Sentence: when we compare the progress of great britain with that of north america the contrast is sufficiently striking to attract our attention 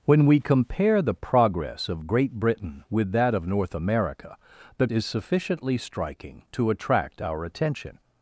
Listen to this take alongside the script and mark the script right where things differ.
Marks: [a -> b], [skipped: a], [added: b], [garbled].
when we compare the progress of great britain with that of north america the [skipped: contrast] is sufficiently striking to attract our attention